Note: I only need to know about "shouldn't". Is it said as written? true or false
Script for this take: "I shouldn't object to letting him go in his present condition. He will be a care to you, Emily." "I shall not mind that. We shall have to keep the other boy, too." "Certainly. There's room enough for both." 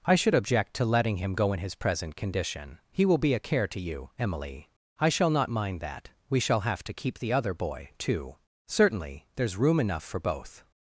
false